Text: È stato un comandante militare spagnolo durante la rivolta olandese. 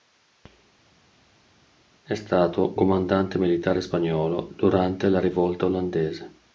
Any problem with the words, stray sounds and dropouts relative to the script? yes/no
yes